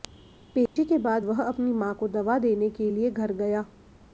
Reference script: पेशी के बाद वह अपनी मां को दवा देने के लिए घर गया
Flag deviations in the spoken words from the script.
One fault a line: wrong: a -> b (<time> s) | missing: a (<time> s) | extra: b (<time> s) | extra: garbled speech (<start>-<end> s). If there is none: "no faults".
no faults